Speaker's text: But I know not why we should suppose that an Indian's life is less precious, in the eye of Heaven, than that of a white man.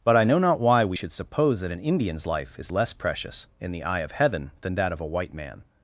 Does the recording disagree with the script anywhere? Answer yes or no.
no